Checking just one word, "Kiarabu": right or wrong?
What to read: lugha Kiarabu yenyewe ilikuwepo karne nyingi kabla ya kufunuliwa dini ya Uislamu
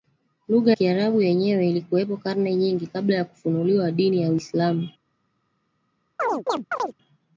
right